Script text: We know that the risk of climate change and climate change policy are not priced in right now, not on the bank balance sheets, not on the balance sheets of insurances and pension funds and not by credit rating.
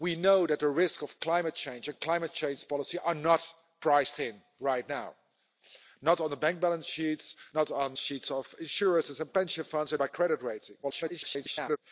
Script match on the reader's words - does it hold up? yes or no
no